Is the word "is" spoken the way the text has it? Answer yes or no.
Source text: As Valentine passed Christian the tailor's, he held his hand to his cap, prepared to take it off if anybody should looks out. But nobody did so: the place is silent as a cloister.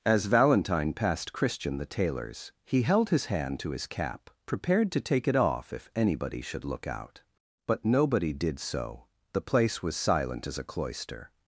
no